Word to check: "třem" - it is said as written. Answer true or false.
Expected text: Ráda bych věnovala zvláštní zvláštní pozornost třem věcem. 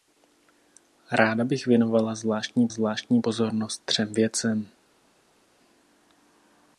true